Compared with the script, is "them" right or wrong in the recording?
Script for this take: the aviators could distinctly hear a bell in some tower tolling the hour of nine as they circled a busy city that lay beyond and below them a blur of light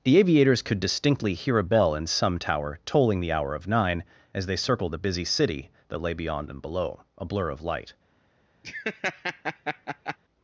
wrong